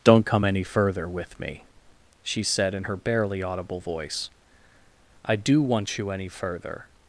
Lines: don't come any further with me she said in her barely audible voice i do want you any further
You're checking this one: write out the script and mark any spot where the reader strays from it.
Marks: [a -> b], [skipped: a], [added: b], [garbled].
don't come any further with me she said in her barely audible voice i do want you any further